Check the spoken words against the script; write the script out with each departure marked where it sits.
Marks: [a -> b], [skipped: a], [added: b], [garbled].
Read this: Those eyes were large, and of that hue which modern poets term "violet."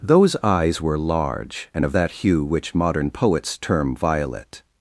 Those eyes were large, and of that hue which modern poets term "violet."